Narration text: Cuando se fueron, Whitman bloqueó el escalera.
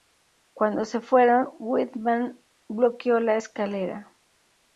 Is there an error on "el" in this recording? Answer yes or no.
yes